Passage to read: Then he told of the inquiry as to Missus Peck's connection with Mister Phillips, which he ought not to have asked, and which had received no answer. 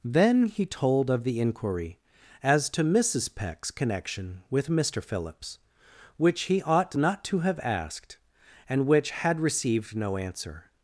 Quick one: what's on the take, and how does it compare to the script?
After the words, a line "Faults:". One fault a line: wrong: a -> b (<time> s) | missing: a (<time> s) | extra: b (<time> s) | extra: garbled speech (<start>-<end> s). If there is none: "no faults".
Then he told of the inquiry as to Missus Peck's connection with Mister Phillips, which he ought not to have asked, and which had received no answer.
Faults:
no faults